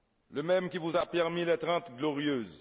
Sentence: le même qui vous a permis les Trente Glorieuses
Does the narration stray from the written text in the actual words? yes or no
no